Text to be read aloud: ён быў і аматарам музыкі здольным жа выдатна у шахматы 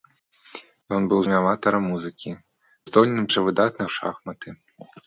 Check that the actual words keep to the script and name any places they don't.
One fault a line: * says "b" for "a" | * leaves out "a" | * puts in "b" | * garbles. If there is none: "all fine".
all fine